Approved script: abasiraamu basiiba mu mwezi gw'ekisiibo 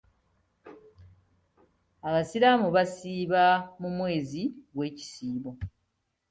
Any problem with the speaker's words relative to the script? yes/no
no